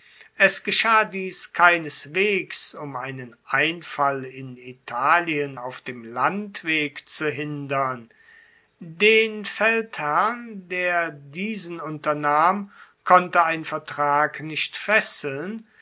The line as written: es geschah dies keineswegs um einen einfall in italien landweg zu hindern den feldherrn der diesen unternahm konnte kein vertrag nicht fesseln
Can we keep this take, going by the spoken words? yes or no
no